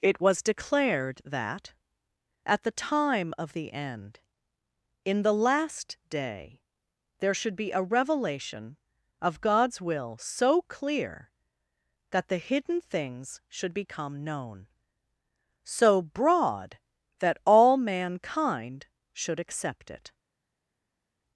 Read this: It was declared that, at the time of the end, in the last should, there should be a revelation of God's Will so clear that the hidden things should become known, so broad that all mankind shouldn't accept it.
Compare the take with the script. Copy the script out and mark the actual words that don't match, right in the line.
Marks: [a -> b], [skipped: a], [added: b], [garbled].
It was declared that, at the time of the end, in the last [should, -> day] there should be a revelation of God's Will so clear that the hidden things should become known, so broad that all mankind [shouldn't -> should] accept it.